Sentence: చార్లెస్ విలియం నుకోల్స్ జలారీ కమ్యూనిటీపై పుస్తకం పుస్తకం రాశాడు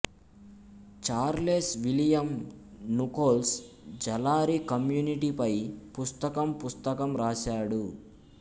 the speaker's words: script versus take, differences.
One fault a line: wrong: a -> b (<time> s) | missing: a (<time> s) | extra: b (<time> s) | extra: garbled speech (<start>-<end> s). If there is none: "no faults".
no faults